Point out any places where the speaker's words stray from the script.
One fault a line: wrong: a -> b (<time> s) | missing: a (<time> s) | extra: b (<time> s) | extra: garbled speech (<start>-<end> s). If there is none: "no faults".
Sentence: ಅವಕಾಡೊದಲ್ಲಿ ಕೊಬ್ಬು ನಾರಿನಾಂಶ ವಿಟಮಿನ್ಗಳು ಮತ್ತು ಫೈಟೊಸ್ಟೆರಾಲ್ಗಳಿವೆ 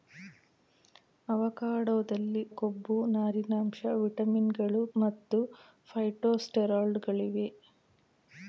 no faults